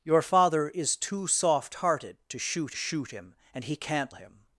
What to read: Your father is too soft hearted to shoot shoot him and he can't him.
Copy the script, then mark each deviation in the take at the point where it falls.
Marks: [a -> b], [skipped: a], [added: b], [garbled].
Your father is too soft hearted to shoot shoot him and he can't him.